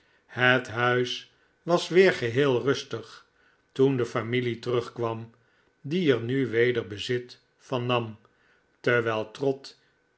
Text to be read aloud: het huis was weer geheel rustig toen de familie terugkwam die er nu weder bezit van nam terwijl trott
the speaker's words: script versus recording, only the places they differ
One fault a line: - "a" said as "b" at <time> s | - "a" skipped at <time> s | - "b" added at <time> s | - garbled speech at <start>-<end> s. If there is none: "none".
none